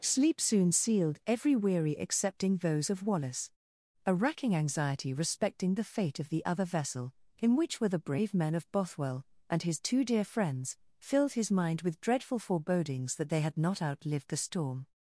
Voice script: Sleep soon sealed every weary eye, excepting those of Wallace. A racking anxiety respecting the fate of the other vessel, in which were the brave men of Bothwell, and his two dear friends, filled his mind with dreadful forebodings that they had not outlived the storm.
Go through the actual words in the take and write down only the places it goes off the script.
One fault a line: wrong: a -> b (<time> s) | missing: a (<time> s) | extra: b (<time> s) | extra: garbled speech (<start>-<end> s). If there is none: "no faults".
missing: eye (1.9 s)